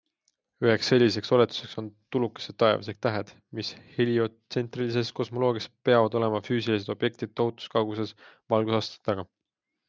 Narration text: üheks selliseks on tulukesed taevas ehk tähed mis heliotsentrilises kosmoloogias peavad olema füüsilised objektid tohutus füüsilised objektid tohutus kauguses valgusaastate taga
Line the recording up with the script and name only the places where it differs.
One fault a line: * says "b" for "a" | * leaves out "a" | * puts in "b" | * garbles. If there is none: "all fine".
* puts in "oletuseks"
* leaves out "füüsilised objektid tohutus"